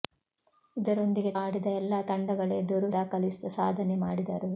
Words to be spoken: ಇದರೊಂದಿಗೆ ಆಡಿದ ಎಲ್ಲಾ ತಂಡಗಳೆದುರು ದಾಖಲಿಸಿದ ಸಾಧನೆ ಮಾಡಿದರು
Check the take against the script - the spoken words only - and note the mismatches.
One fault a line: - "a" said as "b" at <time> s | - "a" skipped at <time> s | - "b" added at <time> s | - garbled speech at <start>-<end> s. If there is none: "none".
none